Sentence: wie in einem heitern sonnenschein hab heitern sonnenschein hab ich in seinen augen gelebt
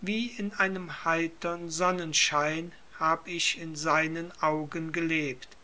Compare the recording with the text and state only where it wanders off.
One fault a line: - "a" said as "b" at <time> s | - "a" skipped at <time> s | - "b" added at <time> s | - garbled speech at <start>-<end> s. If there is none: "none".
- "heitern sonnenschein hab" skipped at 3.3 s